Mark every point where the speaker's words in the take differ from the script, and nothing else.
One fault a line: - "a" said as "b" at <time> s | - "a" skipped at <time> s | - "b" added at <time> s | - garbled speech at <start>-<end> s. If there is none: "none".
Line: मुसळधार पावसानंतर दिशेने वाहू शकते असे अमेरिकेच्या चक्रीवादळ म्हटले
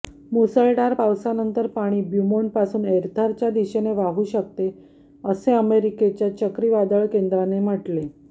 - "पाणी ब्यूमोंटपासून एर्थरच्या" added at 1.7 s
- "केंद्राने" added at 7.1 s